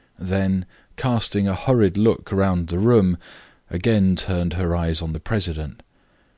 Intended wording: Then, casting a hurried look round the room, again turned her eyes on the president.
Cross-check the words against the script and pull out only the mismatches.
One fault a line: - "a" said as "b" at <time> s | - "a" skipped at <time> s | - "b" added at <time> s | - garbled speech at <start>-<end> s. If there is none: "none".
none